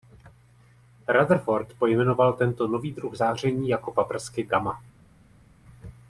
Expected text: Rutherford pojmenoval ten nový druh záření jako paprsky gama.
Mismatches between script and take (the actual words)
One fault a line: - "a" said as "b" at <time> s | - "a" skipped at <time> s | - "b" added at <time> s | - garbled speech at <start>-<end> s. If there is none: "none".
- "ten" said as "tento" at 2.3 s